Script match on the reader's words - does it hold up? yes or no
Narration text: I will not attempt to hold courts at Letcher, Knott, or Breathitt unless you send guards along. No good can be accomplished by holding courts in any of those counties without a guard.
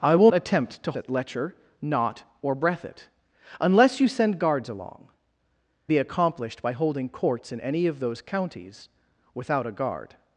no